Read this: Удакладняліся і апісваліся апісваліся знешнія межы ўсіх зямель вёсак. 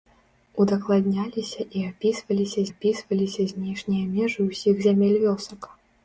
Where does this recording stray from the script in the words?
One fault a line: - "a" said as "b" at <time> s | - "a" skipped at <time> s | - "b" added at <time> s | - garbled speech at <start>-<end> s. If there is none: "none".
none